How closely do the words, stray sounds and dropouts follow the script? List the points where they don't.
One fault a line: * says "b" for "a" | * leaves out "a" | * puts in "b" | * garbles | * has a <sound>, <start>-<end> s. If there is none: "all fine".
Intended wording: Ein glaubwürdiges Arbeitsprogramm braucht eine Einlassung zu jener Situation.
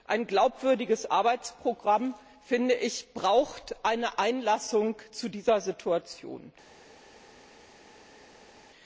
* says "dieser" for "jener"